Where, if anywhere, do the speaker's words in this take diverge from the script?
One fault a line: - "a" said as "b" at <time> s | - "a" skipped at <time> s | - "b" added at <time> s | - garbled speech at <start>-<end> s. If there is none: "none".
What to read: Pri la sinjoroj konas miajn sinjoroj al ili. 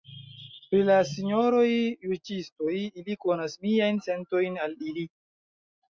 - "juĝistoj ili" added at 2.1 s
- "sinjoroj" said as "sentojn" at 4.1 s